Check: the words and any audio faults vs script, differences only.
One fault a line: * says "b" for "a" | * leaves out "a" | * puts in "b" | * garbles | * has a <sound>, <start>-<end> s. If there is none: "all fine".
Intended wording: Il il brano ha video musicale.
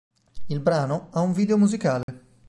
* leaves out "il"
* puts in "un"
* has a dropout, 2.0-2.1 s